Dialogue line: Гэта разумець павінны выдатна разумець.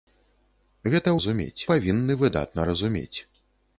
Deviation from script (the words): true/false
false